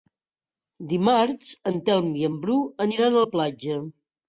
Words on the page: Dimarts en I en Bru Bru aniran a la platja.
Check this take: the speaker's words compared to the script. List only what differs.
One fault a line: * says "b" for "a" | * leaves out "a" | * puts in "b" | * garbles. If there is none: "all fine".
* puts in "Telm"
* leaves out "Bru"